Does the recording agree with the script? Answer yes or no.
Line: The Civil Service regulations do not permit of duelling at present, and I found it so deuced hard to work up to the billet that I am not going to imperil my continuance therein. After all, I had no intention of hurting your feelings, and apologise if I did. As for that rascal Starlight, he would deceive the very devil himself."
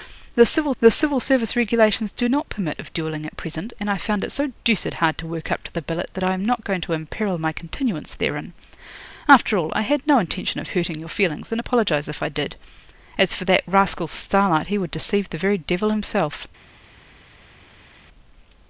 no